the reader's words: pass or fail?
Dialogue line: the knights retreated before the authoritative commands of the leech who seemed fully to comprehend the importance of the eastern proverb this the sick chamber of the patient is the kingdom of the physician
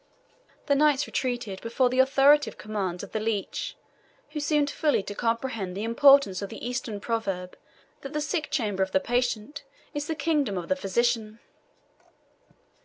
fail